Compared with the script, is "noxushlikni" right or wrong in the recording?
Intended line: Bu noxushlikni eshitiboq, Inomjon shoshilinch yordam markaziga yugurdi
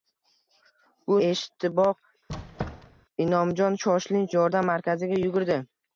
wrong